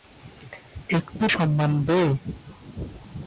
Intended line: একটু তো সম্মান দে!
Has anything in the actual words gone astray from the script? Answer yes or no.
yes